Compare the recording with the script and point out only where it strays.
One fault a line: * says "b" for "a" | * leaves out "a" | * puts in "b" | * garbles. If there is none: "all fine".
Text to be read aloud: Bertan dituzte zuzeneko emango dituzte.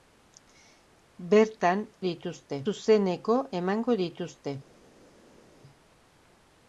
all fine